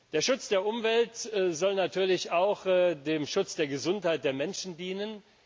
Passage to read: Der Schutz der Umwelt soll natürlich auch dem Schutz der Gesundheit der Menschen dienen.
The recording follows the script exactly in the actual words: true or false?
true